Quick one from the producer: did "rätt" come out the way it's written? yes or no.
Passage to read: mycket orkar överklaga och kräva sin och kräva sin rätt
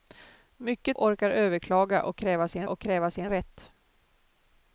yes